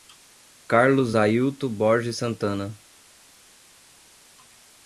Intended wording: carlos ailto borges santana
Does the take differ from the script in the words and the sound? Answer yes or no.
no